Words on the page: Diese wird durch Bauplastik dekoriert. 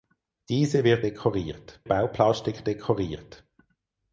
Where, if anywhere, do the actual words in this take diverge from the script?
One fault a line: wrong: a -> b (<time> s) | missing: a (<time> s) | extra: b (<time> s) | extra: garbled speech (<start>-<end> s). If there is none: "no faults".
wrong: durch -> dekoriert (1.0 s)